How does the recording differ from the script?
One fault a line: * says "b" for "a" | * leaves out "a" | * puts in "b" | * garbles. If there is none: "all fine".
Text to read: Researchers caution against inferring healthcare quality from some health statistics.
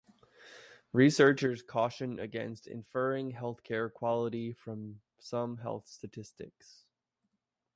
all fine